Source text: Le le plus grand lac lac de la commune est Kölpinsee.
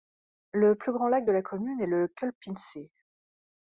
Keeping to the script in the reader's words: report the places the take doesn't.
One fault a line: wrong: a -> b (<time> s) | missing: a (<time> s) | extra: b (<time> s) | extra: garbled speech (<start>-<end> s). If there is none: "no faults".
missing: le (0.7 s)
missing: lac (1.3 s)
extra: le (1.9 s)